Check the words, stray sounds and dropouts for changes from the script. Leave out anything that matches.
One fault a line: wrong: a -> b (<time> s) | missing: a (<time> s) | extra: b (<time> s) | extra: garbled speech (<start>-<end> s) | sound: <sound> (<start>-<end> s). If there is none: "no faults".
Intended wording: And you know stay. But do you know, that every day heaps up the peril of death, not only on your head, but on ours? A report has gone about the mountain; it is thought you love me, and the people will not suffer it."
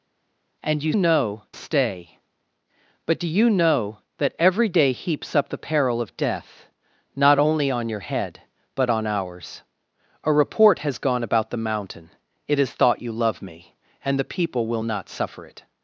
no faults